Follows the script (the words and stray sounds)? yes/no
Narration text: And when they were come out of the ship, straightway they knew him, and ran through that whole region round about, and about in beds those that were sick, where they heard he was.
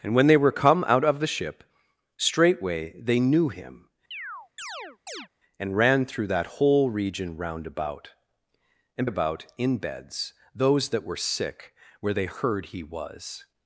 no